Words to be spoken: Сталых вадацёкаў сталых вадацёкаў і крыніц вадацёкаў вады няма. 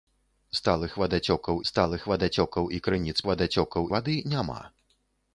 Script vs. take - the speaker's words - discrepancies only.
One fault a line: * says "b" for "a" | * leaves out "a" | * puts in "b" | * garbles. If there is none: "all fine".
all fine